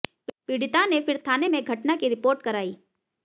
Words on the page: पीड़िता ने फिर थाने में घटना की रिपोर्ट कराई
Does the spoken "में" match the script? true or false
true